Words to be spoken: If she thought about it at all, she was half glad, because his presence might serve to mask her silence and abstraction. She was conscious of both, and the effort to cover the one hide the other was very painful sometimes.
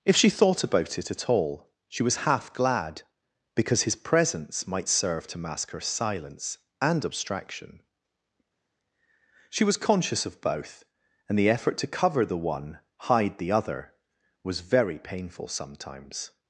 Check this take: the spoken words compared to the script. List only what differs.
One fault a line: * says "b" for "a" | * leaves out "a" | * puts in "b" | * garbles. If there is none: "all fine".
all fine